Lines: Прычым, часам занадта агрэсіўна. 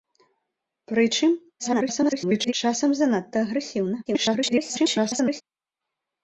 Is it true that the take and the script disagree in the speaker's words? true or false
true